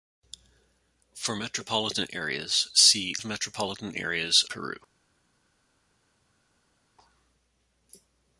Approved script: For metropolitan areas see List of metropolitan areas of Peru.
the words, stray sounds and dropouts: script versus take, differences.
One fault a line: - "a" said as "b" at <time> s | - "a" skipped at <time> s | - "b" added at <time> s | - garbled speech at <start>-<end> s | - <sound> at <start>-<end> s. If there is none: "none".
- "List" skipped at 3.1 s
- "of" skipped at 4.4 s